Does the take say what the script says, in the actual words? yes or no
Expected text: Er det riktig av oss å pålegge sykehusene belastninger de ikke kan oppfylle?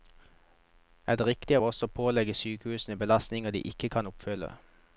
yes